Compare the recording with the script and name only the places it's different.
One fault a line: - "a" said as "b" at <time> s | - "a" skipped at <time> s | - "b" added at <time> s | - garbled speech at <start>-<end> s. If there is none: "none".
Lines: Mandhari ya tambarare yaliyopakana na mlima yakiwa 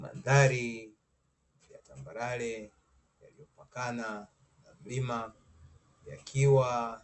none